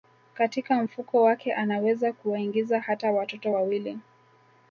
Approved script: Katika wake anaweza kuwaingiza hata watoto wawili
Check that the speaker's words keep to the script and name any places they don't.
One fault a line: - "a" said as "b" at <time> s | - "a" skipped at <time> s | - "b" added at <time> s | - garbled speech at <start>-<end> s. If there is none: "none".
- "mfuko" added at 0.8 s